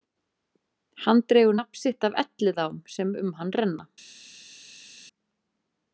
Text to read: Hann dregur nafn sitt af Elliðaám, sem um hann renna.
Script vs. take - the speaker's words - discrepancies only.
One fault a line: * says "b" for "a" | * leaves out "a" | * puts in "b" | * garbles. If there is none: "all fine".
all fine